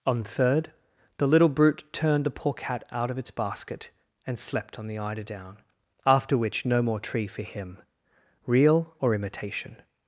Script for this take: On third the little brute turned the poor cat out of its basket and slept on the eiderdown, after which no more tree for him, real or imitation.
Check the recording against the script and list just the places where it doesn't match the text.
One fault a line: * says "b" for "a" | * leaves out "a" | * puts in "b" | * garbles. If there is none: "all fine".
all fine